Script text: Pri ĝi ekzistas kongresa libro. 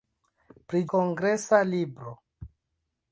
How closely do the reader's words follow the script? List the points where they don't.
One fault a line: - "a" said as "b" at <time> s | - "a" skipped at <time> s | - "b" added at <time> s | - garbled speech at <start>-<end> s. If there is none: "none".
- "ĝi ekzistas" skipped at 0.8 s